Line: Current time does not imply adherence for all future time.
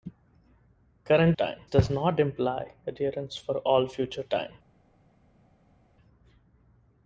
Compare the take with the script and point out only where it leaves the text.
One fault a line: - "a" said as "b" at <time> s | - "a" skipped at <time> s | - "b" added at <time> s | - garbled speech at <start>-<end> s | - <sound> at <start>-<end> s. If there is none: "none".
none